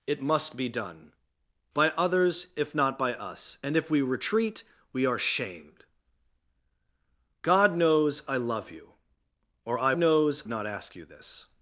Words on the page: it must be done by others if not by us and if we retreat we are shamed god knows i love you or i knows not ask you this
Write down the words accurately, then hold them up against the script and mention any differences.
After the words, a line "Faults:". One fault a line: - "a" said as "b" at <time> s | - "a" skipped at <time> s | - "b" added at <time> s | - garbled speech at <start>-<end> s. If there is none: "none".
it must be done by others if not by us and if we retreat we are shamed god knows i love you or i knows not ask you this
Faults:
none